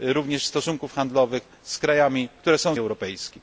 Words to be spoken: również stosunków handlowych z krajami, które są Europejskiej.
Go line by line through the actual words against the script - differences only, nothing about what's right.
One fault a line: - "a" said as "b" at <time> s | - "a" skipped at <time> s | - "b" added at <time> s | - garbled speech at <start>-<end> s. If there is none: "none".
none